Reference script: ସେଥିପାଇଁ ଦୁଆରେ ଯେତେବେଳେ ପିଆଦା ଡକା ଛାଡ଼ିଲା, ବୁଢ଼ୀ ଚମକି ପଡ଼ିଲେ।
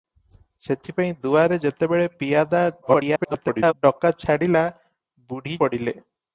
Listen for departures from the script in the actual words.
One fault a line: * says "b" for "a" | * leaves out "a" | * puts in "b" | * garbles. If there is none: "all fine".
* garbles
* leaves out "ଚମକି"